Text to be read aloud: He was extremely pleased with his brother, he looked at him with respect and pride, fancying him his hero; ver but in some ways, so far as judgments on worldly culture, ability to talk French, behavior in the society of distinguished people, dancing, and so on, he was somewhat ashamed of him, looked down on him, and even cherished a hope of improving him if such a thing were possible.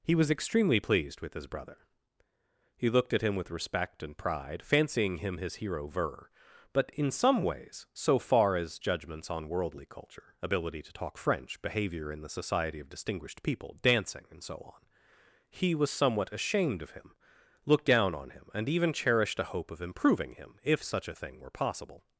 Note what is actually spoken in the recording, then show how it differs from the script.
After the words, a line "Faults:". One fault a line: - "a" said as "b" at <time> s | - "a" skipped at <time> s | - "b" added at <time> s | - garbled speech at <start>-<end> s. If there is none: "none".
He was extremely pleased with his brother, he looked at him with respect and pride, fancying him his hero; ver but in some ways, so far as judgments on worldly culture, ability to talk French, behavior in the society of distinguished people, dancing, and so on, he was somewhat ashamed of him, looked down on him, and even cherished a hope of improving him if such a thing were possible.
Faults:
none